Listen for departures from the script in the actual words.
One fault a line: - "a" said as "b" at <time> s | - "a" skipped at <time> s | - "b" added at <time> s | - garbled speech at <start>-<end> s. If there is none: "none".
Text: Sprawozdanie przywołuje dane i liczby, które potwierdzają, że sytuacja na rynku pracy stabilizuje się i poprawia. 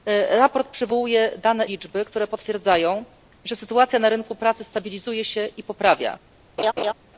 - "i" skipped at 1.6 s